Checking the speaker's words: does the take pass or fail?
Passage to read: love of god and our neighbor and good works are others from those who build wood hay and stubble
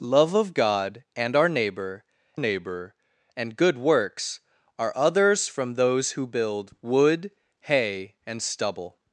fail